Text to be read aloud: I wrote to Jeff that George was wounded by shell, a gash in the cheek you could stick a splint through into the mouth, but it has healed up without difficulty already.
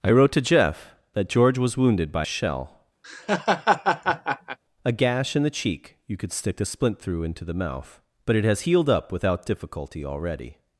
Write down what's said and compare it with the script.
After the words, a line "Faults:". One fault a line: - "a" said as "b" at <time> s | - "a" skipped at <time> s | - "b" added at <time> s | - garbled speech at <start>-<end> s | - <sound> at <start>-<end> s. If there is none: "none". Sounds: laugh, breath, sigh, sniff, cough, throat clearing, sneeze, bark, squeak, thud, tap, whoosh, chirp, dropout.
I wrote to Jeff that George was wounded by shell, a gash in the cheek you could stick a splint through into the mouth, but it has healed up without difficulty already.
Faults:
- laugh at 3.0-4.6 s